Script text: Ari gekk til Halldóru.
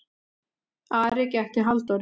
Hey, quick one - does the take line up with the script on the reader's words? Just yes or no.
yes